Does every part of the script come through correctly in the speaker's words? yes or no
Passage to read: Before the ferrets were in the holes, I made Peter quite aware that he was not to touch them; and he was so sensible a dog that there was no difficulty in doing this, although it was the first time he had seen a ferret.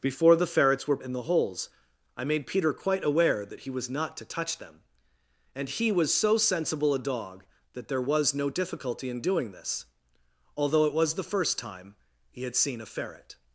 yes